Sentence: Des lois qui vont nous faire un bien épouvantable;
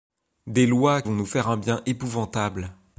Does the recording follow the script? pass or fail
fail